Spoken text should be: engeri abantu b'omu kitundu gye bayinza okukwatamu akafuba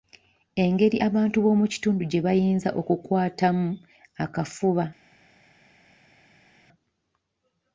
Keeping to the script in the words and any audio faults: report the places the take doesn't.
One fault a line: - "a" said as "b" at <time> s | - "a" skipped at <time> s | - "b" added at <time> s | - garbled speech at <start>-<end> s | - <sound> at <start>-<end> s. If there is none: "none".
none